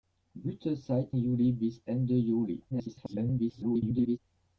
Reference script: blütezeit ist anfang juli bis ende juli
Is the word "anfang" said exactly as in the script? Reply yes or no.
no